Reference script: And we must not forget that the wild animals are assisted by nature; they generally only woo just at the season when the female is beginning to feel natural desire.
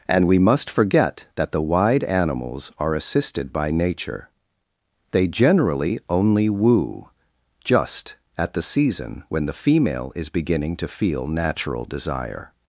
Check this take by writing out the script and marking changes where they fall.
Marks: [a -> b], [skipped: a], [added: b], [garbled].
And we must [skipped: not] forget that the [wild -> wide] animals are assisted by nature; they generally only woo just at the season when the female is beginning to feel natural desire.